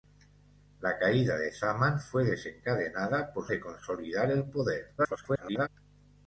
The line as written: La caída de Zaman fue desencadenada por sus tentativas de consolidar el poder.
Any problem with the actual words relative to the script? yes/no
yes